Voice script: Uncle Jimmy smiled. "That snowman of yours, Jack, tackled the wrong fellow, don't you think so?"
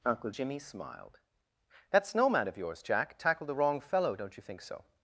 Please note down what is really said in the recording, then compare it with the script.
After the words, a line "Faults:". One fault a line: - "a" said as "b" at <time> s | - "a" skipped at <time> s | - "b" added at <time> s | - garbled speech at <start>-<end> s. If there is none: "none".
Uncle Jimmy smiled. "That snowman of yours, Jack, tackled the wrong fellow, don't you think so?"
Faults:
none